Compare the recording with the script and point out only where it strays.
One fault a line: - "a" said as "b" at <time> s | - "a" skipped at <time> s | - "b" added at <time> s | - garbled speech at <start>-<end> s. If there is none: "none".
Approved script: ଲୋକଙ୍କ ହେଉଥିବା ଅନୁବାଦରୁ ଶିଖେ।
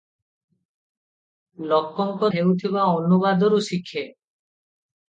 none